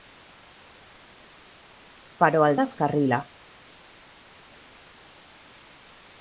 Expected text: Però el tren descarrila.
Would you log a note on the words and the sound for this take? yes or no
yes